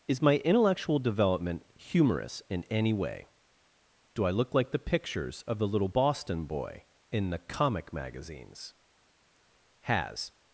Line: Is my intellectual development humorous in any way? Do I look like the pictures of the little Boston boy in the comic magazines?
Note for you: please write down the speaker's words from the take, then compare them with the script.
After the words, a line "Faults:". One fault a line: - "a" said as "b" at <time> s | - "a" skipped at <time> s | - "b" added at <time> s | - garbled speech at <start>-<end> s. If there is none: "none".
Is my intellectual development humorous in any way? Do I look like the pictures of the little Boston boy in the comic magazines? Has
Faults:
- "Has" added at 9.8 s